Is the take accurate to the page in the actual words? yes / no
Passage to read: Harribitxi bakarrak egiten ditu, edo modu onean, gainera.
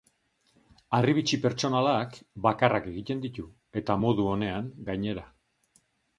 no